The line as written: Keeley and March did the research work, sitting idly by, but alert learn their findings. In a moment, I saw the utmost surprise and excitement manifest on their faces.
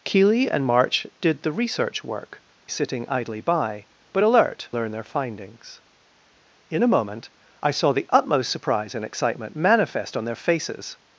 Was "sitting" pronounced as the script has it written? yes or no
yes